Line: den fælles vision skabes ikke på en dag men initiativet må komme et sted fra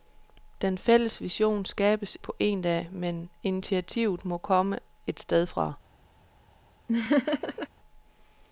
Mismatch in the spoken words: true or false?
true